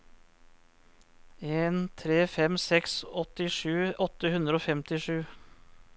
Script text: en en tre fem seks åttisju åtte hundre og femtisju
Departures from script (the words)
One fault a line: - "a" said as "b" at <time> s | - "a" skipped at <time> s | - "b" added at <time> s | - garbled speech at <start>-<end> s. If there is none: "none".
- "en" skipped at 1.8 s